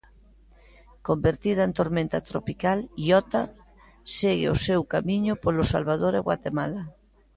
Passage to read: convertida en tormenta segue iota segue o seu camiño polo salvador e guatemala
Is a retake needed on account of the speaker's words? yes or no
yes